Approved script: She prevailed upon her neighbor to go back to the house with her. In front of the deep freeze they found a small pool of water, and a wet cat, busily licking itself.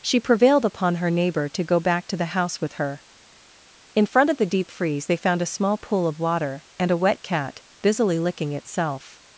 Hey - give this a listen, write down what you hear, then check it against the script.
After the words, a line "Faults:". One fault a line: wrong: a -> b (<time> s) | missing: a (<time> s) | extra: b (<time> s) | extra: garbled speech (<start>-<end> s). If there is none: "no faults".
She prevailed upon her neighbor to go back to the house with her. In front of the deep freeze they found a small pool of water, and a wet cat, busily licking itself.
Faults:
no faults